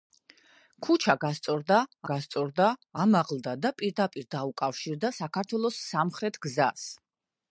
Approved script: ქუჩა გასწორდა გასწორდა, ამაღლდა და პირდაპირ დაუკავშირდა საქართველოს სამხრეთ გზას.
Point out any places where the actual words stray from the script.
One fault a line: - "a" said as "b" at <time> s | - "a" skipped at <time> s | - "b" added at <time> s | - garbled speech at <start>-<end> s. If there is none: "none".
none